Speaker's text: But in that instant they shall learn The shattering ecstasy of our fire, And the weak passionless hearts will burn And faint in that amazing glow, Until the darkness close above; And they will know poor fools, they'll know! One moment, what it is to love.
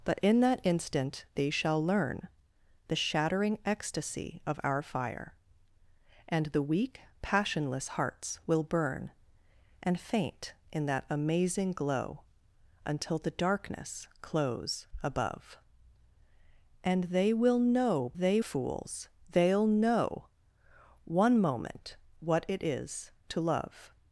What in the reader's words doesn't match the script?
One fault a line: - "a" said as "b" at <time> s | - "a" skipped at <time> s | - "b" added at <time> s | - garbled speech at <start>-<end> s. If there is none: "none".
- "poor" said as "they" at 18.1 s